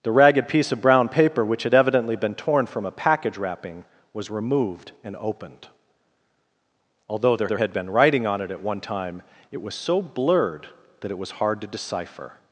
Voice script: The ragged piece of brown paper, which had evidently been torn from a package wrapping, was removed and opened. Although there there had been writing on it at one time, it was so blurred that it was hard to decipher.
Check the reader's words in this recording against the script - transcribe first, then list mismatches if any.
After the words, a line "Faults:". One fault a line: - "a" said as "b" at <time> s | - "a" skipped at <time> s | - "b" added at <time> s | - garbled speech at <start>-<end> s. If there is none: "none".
The ragged piece of brown paper, which had evidently been torn from a package wrapping, was removed and opened. Although there there had been writing on it at one time, it was so blurred that it was hard to decipher.
Faults:
none